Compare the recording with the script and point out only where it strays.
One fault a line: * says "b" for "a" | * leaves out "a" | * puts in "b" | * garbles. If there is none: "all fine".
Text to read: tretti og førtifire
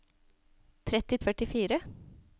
all fine